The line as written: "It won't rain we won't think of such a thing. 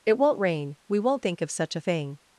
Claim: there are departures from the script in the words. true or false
false